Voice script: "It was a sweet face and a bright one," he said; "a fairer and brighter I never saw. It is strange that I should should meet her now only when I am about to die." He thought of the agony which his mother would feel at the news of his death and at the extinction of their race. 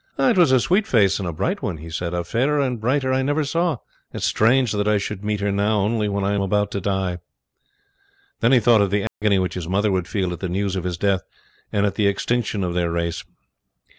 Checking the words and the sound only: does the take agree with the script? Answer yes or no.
no